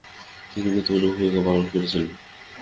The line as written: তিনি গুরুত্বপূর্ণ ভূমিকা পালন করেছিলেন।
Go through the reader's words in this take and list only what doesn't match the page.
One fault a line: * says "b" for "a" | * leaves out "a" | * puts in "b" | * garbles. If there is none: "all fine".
all fine